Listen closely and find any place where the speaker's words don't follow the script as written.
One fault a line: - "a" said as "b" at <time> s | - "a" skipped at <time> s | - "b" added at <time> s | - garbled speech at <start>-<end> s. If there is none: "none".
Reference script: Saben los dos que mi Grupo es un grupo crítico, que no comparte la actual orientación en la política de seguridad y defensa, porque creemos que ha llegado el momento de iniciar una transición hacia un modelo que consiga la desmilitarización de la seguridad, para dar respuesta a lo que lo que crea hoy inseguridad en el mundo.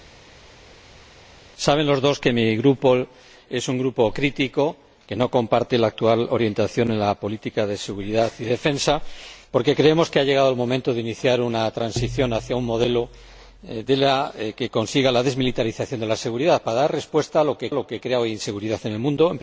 none